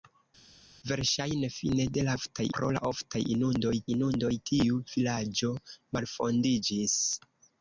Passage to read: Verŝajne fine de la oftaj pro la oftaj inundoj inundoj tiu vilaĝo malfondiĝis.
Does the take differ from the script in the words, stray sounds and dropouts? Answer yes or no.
no